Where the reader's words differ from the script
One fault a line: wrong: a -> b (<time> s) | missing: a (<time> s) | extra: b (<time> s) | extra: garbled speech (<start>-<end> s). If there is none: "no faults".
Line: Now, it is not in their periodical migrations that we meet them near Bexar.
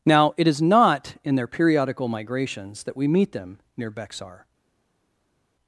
no faults